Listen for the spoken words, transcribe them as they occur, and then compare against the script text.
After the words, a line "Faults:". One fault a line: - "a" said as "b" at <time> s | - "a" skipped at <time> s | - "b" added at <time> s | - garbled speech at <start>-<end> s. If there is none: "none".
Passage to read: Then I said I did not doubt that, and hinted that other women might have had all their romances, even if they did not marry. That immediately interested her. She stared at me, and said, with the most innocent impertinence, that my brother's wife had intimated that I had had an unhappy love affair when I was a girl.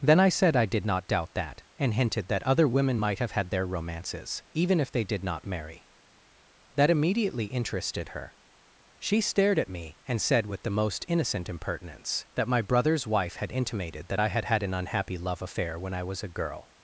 Then I said I did not doubt that, and hinted that other women might have had their romances, even if they did not marry. That immediately interested her. She stared at me, and said, with the most innocent impertinence, that my brother's wife had intimated that I had had an unhappy love affair when I was a girl.
Faults:
- "all" skipped at 3.5 s